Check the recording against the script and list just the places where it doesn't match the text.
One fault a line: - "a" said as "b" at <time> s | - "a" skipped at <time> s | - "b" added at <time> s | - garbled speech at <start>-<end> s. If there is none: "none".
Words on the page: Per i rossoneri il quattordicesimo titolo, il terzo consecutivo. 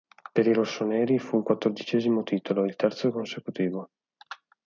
- "fu" added at 1.2 s